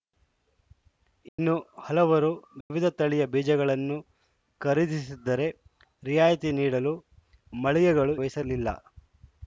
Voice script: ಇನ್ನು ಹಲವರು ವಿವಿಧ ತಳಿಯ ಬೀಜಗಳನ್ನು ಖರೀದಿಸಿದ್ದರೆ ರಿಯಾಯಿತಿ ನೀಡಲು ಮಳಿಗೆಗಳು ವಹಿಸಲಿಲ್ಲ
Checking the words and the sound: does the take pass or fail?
fail